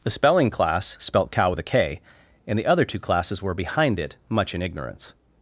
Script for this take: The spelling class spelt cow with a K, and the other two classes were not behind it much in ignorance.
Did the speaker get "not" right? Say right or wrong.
wrong